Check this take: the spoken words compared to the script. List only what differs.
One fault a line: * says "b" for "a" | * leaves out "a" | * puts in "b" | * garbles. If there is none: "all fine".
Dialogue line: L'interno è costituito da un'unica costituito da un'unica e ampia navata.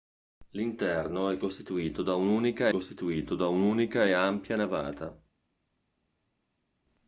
all fine